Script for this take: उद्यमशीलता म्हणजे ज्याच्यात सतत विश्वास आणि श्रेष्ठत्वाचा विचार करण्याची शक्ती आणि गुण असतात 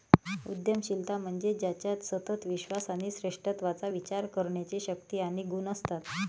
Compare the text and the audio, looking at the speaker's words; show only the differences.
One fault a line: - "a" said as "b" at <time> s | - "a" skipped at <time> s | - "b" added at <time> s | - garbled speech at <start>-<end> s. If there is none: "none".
none